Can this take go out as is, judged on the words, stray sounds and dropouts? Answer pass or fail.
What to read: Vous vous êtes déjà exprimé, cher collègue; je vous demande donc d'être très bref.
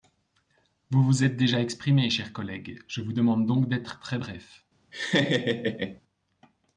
fail